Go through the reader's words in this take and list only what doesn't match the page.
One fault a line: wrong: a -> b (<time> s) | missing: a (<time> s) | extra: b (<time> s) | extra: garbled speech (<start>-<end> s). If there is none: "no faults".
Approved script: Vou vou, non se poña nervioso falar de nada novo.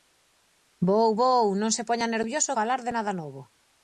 no faults